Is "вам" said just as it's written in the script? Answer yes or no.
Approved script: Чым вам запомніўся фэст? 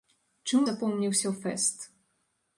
no